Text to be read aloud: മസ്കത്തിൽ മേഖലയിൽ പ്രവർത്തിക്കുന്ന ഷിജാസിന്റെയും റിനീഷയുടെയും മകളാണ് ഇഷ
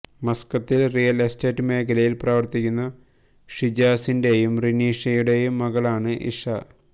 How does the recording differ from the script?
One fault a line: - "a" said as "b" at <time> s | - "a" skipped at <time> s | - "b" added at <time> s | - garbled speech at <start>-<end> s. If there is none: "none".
- "റിയൽ എസ്റ്റേറ്റ്" added at 0.9 s